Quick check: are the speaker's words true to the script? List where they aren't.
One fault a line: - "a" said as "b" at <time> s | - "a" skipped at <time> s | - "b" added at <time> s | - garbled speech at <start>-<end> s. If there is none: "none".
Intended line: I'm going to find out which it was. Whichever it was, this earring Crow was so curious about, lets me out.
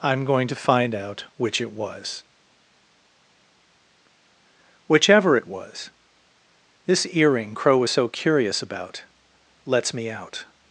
none